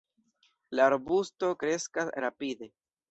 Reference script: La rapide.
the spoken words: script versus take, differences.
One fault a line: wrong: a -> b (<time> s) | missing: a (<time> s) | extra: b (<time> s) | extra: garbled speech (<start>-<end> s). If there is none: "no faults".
extra: arbusto kreskas (0.9 s)